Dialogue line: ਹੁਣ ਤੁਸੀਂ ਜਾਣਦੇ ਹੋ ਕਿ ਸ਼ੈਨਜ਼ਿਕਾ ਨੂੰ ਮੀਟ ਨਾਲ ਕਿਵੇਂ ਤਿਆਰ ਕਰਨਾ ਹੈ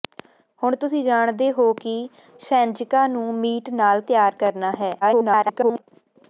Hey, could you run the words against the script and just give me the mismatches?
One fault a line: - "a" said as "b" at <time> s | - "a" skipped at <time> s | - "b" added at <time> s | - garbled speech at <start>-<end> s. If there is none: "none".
- "ਕਿਵੇਂ" skipped at 4.0 s
- garbled speech at 5.0-5.8 s